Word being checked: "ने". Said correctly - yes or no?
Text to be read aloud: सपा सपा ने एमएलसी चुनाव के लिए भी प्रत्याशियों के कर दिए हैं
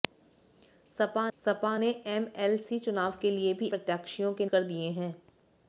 yes